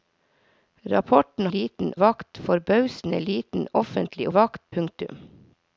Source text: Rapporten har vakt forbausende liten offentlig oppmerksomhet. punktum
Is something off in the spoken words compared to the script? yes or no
yes